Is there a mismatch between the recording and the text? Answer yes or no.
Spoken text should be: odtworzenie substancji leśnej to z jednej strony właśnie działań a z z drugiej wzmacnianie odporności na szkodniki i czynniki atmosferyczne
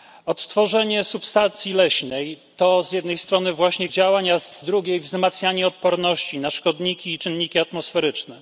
no